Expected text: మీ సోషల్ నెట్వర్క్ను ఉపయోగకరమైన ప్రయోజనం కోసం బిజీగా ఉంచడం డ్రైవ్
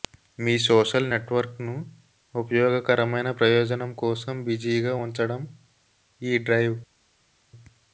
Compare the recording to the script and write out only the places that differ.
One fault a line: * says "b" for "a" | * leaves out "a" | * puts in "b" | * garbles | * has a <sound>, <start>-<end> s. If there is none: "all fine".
* puts in "ఈ"